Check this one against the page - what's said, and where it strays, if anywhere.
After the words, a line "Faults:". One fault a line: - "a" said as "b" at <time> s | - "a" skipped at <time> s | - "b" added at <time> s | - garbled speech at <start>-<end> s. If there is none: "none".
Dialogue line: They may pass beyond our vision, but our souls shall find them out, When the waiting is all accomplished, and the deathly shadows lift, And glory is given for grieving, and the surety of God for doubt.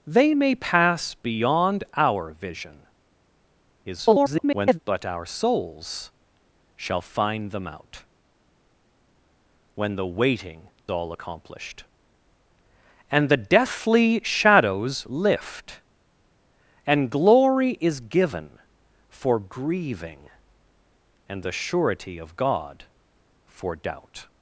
They may pass beyond our vision, [garbled] but our souls shall find them out, When the waiting all accomplished, and the deathly shadows lift, And glory is given for grieving, and the surety of God for doubt.
Faults:
- garbled speech at 3.8-4.8 s
- "is" skipped at 10.7 s